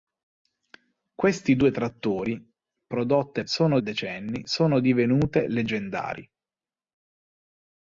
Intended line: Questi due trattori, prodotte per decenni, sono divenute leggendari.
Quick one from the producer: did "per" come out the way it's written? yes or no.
no